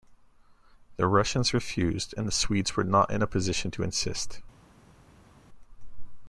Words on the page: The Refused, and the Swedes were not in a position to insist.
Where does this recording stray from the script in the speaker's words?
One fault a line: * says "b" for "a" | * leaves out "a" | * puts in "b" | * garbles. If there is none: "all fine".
* puts in "Russians"